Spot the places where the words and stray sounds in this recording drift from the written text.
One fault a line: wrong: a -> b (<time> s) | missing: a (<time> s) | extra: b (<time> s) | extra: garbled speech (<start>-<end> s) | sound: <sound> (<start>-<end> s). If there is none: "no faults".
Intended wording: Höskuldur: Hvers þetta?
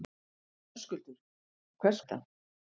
no faults